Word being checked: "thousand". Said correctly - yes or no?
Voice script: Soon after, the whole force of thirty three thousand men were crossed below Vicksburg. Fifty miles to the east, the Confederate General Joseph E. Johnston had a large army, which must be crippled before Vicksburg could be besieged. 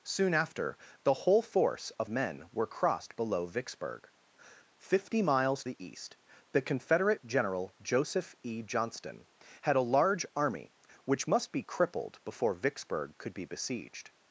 no